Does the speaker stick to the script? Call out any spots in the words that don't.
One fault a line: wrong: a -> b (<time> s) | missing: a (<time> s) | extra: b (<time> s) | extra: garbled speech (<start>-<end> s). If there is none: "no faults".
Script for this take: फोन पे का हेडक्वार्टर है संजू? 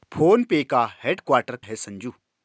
no faults